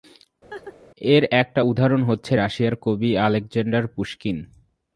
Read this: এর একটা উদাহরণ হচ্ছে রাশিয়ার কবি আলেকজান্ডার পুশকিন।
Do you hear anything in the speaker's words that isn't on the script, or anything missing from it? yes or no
no